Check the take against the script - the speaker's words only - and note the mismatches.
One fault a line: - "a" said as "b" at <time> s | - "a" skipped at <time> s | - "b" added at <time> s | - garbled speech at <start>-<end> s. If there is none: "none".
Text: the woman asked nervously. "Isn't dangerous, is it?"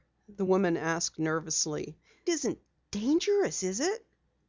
none